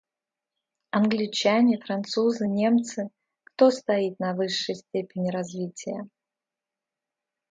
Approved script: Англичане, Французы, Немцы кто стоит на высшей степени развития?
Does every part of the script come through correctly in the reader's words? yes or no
yes